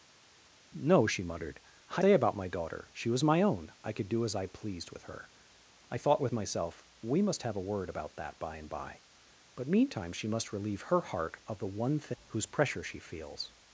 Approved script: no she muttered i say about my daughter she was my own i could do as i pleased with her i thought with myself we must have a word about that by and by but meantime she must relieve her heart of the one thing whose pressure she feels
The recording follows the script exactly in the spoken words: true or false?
true